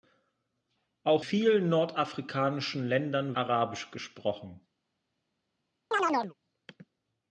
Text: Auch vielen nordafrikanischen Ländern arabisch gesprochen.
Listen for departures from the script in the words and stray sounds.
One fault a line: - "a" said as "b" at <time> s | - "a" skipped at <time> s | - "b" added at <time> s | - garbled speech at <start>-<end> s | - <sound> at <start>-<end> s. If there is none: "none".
- chirp at 5.9-6.3 s